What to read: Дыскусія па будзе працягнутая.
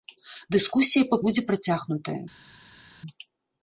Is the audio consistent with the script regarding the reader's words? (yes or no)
yes